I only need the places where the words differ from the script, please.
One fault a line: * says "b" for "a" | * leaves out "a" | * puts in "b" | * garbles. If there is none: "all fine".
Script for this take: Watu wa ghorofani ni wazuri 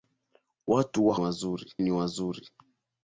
* says "wazuri" for "ghorofani"